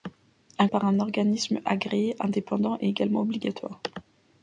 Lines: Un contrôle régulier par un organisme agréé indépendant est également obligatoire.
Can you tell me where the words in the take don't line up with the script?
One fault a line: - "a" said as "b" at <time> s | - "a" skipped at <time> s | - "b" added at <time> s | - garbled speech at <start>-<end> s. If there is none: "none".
- "contrôle régulier" skipped at 0.7 s